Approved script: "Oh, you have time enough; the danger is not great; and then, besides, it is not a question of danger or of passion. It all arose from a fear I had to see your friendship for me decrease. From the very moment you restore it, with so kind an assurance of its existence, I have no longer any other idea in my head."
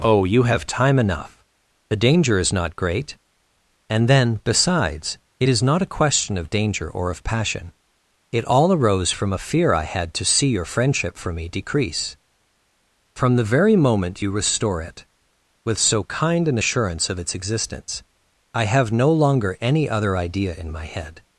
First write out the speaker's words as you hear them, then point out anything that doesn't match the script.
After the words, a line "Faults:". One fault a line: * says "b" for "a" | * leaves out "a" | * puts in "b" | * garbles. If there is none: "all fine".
"Oh, you have time enough; the danger is not great; and then, besides, it is not a question of danger or of passion. It all arose from a fear I had to see your friendship for me decrease. From the very moment you restore it, with so kind an assurance of its existence, I have no longer any other idea in my head."
Faults:
all fine